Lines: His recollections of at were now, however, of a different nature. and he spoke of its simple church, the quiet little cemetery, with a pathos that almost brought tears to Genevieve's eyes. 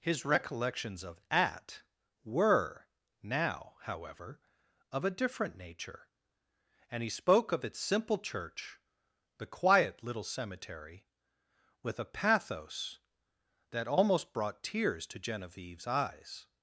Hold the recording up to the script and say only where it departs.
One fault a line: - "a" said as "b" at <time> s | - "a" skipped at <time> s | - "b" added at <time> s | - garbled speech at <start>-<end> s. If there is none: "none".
none